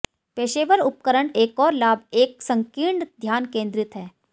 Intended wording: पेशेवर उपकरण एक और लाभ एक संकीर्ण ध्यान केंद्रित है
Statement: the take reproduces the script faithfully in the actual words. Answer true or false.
true